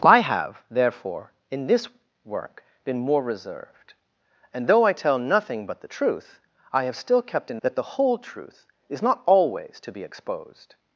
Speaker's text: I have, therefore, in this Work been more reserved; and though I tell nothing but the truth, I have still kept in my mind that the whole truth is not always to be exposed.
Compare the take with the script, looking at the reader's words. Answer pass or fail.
fail